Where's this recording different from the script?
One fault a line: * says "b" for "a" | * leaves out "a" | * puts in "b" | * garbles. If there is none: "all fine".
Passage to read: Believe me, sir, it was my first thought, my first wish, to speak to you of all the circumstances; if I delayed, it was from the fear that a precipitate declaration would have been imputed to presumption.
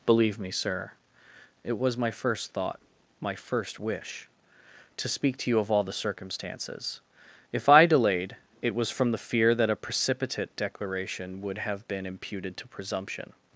all fine